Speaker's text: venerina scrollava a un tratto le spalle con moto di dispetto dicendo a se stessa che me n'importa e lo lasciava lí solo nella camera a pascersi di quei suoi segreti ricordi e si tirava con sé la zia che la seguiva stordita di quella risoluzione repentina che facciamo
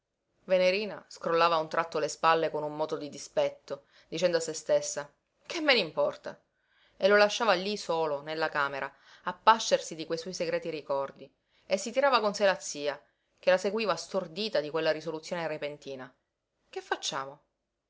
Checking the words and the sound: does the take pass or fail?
fail